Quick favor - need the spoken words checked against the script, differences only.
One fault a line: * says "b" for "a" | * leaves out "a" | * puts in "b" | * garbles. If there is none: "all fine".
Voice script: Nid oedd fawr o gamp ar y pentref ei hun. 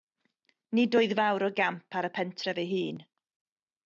all fine